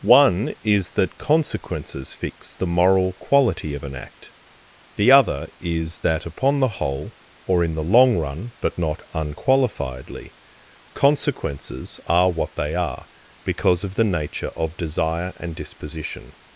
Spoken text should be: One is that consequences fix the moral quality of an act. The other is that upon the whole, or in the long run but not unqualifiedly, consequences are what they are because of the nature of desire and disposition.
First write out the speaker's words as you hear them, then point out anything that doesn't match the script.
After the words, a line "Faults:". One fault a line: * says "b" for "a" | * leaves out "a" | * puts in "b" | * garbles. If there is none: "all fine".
One is that consequences fix the moral quality of an act. The other is that upon the whole, or in the long run but not unqualifiedly, consequences are what they are because of the nature of desire and disposition.
Faults:
all fine